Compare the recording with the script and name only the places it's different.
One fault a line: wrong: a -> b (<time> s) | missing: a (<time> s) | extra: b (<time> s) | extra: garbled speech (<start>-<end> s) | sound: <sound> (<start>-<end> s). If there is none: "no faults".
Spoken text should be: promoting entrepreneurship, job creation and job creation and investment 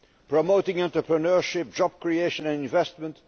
missing: job creation and (2.6 s)